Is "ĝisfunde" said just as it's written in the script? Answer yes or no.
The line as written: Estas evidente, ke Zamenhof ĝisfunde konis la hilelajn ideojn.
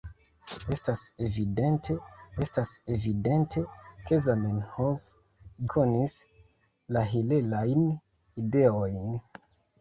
no